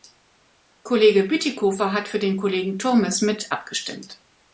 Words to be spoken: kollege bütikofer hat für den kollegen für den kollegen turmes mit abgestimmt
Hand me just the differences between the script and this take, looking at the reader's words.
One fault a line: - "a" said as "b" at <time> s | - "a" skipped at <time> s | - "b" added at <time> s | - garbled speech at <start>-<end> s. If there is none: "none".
- "für den kollegen" skipped at 2.8 s